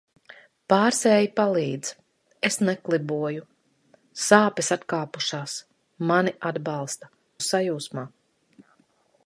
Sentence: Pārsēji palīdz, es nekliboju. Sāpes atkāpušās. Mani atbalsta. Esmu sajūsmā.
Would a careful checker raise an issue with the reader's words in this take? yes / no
yes